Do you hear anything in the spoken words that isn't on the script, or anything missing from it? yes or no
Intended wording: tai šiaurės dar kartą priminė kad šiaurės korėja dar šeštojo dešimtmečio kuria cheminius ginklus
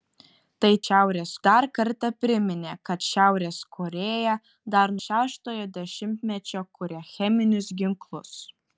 no